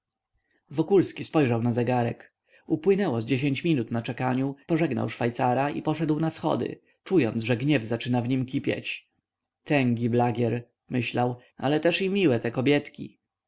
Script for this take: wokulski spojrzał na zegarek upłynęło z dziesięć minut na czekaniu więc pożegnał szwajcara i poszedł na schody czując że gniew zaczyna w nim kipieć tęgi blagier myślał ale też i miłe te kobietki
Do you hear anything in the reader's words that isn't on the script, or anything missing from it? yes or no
yes